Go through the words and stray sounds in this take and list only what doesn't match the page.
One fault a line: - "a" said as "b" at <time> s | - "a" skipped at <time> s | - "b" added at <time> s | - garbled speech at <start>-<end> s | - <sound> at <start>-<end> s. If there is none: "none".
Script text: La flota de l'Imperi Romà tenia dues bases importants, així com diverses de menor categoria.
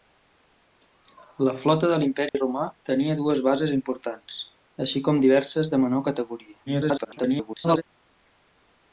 - dropout at 2.3-2.3 s
- garbled speech at 6.7-7.8 s